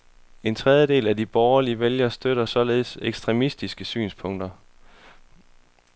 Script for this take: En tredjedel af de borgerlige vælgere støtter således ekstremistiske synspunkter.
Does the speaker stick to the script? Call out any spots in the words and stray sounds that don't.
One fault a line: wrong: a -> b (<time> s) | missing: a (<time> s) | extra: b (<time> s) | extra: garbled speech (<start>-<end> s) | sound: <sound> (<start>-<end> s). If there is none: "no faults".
no faults